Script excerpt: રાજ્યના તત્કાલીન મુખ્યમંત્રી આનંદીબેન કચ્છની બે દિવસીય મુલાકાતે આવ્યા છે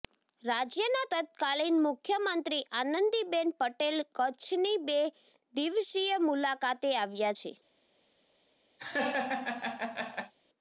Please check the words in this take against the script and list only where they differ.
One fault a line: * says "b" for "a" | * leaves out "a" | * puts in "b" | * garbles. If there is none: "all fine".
* puts in "પટેલ"